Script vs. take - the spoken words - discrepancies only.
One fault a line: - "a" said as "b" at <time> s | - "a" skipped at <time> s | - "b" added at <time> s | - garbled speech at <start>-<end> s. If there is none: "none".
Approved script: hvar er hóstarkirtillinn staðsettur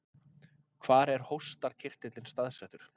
none